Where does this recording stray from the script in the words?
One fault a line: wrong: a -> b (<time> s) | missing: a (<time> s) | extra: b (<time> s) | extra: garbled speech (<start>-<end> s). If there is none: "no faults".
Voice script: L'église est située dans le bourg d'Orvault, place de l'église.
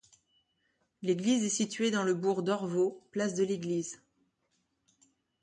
no faults